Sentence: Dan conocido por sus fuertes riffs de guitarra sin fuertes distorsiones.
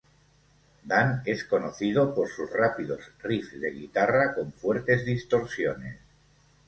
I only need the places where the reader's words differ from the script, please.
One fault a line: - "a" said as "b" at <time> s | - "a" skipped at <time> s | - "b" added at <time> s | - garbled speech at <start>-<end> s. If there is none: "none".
- "es" added at 1.2 s
- "fuertes" said as "rápidos" at 2.5 s
- "sin" said as "con" at 4.3 s